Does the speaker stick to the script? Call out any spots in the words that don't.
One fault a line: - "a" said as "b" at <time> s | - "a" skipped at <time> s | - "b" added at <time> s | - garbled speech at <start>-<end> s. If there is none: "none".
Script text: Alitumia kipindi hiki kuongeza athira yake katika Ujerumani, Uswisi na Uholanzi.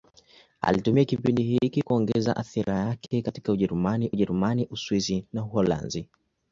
- "Ujerumani" added at 4.1 s